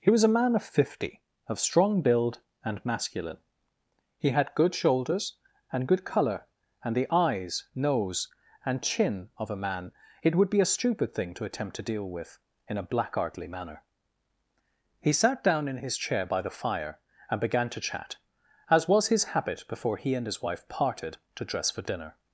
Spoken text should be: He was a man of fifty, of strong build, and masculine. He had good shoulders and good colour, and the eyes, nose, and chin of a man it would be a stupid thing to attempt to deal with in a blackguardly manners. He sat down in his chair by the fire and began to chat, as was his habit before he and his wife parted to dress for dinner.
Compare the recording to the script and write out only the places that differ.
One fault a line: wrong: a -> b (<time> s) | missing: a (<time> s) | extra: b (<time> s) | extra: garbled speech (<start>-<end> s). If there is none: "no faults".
wrong: manners -> manner (13.5 s)